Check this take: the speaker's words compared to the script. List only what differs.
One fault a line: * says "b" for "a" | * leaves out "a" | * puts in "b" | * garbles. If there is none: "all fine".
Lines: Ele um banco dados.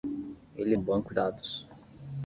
all fine